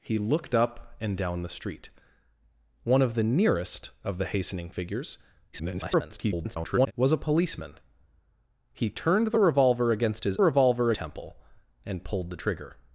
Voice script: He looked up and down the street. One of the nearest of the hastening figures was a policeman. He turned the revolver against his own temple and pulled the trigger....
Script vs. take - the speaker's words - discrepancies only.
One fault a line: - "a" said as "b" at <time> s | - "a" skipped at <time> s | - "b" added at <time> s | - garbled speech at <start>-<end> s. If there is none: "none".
- garbled speech at 5.5-6.9 s
- "own" said as "revolver" at 10.4 s